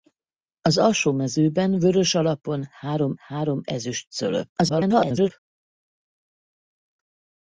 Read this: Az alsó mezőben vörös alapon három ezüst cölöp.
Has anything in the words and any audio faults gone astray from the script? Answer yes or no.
yes